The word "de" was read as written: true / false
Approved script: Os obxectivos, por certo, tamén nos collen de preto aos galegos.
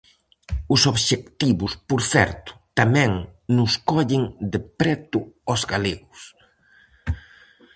true